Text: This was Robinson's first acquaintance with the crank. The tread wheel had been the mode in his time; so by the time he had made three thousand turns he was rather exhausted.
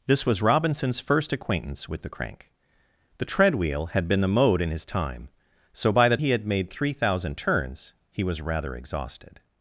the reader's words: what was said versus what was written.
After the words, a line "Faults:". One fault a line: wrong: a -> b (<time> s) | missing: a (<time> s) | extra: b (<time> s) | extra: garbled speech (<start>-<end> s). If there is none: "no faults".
This was Robinson's first acquaintance with the crank. The tread wheel had been the mode in his time; so by the he had made three thousand turns he was rather exhausted.
Faults:
missing: time (6.2 s)